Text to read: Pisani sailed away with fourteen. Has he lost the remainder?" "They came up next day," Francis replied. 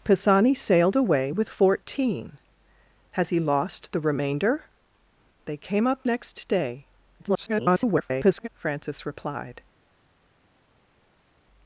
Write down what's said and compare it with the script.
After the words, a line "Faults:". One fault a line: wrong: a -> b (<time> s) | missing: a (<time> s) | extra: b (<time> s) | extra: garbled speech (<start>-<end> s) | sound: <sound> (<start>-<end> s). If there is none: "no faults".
Pisani sailed away with fourteen. Has he lost the remainder?" "They came up next day," [garbled] Francis replied.
Faults:
extra: garbled speech (7.2-8.5 s)